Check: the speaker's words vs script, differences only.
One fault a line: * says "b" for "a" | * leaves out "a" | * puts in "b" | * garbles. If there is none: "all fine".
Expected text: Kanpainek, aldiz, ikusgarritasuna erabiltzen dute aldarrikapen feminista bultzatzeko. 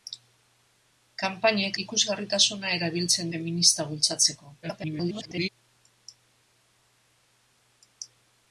* leaves out "aldiz"
* leaves out "dute aldarrikapen"
* garbles